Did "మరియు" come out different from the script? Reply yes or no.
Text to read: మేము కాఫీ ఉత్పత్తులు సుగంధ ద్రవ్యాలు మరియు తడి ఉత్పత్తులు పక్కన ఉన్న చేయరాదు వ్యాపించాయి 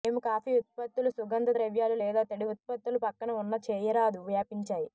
yes